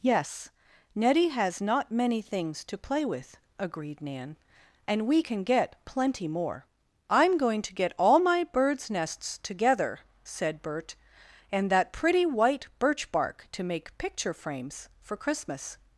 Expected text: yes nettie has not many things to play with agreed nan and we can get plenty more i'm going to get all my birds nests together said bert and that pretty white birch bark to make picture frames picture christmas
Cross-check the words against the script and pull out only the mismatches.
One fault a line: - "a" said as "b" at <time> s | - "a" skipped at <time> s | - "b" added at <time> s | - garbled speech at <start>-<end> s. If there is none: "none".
- "picture" said as "for" at 15.0 s